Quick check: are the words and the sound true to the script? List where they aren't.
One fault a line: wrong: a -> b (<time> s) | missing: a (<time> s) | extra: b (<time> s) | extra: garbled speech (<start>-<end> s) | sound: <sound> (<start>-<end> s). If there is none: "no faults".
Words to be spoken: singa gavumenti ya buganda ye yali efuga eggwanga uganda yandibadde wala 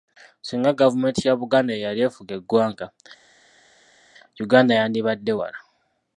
no faults